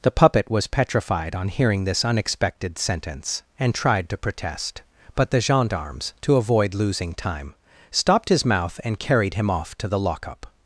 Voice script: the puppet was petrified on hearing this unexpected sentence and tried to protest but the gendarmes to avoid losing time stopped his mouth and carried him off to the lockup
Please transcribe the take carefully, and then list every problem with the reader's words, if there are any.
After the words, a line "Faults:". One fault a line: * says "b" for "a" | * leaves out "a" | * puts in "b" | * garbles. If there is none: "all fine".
the puppet was petrified on hearing this unexpected sentence and tried to protest but the gendarmes to avoid losing time stopped his mouth and carried him off to the lockup
Faults:
all fine